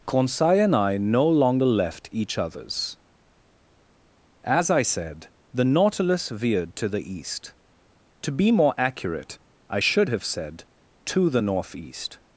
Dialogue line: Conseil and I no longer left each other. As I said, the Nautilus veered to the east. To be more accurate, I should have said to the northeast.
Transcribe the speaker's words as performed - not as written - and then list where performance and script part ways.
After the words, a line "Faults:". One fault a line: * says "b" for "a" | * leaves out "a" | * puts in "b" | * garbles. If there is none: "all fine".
Conseil and I no longer left each others. As I said, the Nautilus veered to the east. To be more accurate, I should have said to the northeast.
Faults:
* says "others" for "other"